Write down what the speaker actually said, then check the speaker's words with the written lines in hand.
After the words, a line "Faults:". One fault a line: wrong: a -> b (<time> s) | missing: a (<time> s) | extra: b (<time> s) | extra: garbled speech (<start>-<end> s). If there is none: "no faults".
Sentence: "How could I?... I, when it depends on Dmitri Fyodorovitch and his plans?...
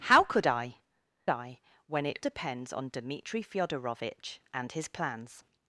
"How could I?... I, when it depends on Dmitri Fyodorovitch and his plans?...
Faults:
no faults